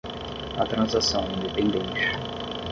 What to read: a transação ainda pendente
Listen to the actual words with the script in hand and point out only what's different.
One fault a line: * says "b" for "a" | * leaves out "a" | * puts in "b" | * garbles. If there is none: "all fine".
all fine